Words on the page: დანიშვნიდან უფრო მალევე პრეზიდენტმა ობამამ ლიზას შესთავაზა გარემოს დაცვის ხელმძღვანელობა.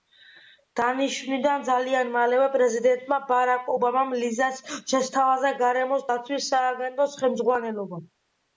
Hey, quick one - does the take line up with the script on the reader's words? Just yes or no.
no